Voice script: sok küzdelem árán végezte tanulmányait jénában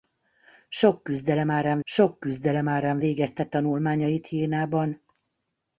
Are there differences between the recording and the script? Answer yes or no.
yes